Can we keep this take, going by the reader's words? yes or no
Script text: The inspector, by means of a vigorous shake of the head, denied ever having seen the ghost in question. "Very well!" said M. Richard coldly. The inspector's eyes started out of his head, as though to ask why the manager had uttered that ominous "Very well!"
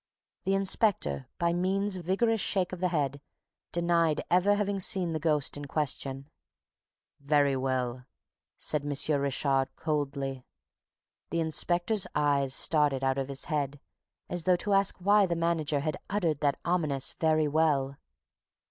no